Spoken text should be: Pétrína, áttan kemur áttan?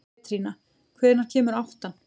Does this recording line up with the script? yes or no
no